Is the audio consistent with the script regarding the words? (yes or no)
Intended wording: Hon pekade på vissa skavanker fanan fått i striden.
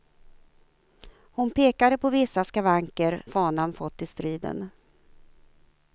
yes